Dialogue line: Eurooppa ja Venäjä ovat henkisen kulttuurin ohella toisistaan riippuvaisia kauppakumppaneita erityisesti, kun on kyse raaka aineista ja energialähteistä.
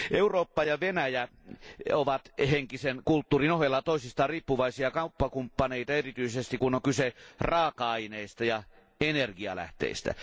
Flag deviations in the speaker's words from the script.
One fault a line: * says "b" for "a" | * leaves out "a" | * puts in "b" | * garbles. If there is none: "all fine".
all fine